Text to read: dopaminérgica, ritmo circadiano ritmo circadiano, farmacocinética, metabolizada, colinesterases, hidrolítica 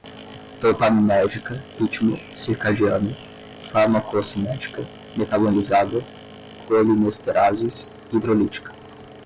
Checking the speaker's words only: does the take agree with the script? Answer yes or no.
no